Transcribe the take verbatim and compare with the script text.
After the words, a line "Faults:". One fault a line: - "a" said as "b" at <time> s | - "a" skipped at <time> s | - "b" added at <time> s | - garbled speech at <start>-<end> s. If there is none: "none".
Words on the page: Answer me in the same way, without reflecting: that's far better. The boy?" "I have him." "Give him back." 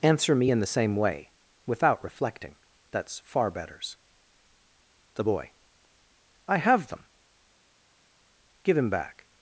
Answer me in the same way, without reflecting: that's far betters. The boy?" "I have them." "Give him back."
Faults:
- "better" said as "betters" at 3.5 s
- "him" said as "them" at 6.9 s